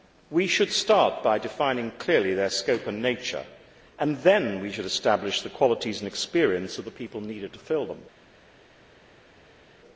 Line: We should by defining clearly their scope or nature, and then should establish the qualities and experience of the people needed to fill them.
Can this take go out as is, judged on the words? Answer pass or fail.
fail